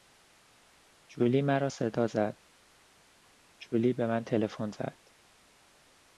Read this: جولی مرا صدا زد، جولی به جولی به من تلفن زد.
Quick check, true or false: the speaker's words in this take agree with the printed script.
false